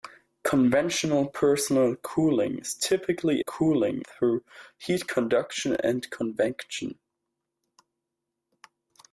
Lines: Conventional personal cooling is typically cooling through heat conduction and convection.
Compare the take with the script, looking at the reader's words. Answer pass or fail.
pass